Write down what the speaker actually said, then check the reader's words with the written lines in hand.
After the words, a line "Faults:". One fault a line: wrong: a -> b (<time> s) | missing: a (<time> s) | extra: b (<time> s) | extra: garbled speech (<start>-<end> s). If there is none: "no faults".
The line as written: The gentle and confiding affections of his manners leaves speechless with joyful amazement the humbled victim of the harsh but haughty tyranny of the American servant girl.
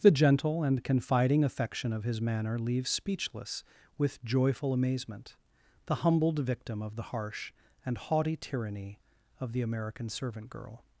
The gentle and confiding affection of his manner leaves speechless with joyful amazement the humbled victim of the harsh and haughty tyranny of the American servant girl.
Faults:
wrong: affections -> affection (1.4 s)
wrong: manners -> manner (2.2 s)
wrong: but -> and (7.8 s)